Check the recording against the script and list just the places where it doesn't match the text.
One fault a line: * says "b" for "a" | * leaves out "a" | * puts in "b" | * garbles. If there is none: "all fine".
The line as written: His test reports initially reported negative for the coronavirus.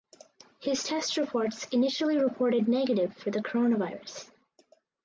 all fine